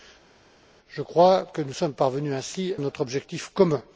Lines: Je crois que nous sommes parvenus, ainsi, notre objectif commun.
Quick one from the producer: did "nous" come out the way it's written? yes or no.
yes